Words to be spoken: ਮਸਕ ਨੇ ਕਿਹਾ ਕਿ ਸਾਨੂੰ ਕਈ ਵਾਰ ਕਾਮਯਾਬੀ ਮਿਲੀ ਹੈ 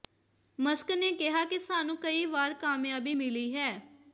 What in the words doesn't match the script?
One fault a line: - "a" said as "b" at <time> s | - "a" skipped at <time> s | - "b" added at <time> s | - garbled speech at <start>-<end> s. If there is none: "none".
none